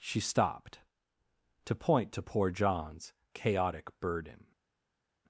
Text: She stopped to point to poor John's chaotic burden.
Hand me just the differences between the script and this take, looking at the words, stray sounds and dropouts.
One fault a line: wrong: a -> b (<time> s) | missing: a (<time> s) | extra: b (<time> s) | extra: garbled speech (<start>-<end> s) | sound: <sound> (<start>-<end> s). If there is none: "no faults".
no faults